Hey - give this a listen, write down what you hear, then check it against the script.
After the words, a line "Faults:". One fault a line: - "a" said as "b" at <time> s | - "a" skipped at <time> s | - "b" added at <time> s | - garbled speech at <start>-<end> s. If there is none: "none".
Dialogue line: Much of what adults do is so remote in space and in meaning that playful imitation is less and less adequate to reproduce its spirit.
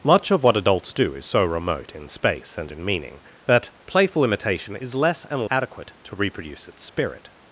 Much of what adults do is so remote in space and in meaning that playful imitation is less and adequate to reproduce its spirit.
Faults:
- "less" skipped at 5.5 s